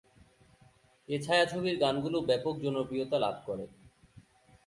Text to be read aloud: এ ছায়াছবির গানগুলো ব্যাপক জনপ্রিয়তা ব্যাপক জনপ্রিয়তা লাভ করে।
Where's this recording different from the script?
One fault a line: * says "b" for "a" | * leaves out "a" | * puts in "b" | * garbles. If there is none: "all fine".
* leaves out "ব্যাপক জনপ্রিয়তা"